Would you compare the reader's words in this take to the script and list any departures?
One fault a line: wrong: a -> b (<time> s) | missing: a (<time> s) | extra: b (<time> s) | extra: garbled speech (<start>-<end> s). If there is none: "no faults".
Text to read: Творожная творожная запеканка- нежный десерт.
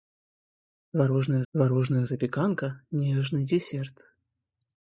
no faults